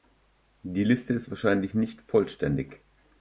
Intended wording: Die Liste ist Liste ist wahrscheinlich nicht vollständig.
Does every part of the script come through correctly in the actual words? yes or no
no